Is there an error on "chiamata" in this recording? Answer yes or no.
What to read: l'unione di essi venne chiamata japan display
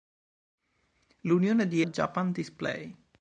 yes